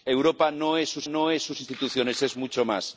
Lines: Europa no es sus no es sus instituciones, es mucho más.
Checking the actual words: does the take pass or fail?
pass